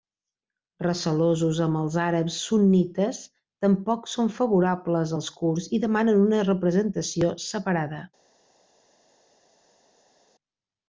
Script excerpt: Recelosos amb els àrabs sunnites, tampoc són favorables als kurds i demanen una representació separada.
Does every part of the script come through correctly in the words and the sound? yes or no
yes